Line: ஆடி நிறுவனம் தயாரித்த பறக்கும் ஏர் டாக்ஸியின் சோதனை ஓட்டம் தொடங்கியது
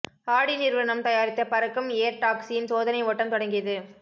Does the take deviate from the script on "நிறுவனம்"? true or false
false